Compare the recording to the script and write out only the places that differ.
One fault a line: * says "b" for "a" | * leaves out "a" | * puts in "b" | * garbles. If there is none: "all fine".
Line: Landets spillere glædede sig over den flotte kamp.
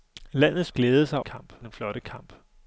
* leaves out "spillere"
* says "kamp" for "over"